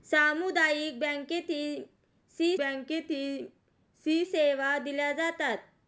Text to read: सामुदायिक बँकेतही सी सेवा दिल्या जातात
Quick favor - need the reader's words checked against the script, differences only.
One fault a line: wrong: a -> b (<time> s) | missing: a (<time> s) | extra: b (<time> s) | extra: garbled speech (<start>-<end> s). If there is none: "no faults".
extra: बँकेतही सी (2.6 s)